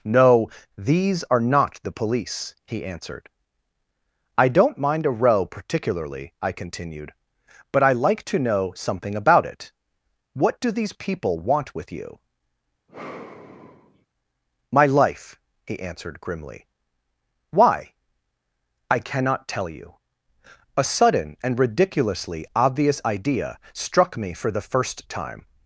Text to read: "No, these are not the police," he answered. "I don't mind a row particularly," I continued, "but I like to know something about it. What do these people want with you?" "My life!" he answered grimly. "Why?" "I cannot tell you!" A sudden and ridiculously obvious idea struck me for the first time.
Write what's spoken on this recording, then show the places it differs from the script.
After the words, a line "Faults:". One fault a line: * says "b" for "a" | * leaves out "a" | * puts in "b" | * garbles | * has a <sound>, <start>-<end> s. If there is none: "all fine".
"No, these are not the police," he answered. "I don't mind a row particularly," I continued, "but I like to know something about it. What do these people want with you?" "My life!" he answered grimly. "Why?" "I cannot tell you!" A sudden and ridiculously obvious idea struck me for the first time.
Faults:
* has a sigh, 12.9-14.1 s